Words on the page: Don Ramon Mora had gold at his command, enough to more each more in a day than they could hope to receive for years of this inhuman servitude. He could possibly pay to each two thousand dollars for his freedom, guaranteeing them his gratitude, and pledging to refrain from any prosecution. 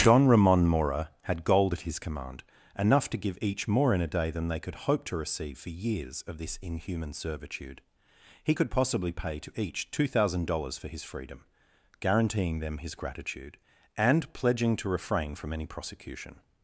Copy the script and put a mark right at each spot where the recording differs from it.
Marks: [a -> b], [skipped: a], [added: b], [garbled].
Don Ramon Mora had gold at his command, enough to [more -> give] each more in a day than they could hope to receive for years of this inhuman servitude. He could possibly pay to each two thousand dollars for his freedom, guaranteeing them his gratitude, and pledging to refrain from any prosecution.